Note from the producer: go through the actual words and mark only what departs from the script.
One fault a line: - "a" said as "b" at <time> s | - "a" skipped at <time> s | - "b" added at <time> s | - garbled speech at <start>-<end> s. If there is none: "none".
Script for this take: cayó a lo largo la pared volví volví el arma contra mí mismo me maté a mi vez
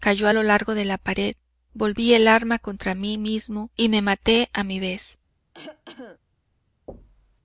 - "de" added at 0.7 s
- "volví" skipped at 2.1 s
- "y" added at 3.7 s